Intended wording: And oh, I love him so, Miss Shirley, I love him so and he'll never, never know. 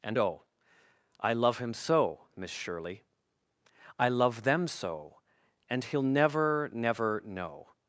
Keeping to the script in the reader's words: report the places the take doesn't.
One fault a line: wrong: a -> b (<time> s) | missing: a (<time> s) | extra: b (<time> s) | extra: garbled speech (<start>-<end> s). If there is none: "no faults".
wrong: him -> them (4.4 s)